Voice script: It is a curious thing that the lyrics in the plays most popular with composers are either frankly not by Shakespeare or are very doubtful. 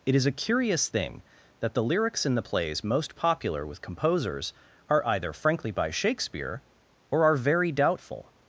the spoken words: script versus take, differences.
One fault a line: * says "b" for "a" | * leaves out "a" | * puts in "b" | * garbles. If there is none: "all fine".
* leaves out "not"